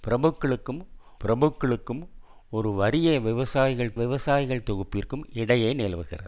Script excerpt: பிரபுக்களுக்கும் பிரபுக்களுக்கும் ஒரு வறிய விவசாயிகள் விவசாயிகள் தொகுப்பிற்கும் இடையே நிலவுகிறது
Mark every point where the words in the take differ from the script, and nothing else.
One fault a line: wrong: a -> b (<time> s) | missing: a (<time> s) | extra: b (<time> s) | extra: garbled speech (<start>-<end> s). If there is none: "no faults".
no faults